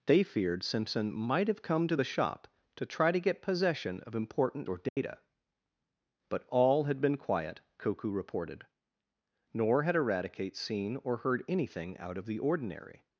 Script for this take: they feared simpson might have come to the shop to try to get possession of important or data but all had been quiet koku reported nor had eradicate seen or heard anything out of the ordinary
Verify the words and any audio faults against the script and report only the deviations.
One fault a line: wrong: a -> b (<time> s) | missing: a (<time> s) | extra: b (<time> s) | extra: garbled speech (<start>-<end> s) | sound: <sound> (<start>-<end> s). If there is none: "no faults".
sound: dropout (4.9-5.0 s)